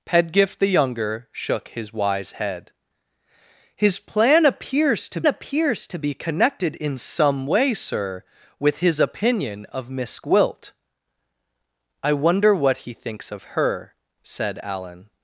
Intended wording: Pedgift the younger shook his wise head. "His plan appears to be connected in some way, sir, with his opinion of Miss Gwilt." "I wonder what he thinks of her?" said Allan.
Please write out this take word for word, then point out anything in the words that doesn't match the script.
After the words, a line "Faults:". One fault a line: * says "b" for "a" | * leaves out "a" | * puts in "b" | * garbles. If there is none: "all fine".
Pedgift the younger shook his wise head. "His plan appears to appears to be connected in some way, sir, with his opinion of Miss Gwilt." "I wonder what he thinks of her?" said Allan.
Faults:
* puts in "appears to"